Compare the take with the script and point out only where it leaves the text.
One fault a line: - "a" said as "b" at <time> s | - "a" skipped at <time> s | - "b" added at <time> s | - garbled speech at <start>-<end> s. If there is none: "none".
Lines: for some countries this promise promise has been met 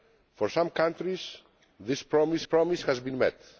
none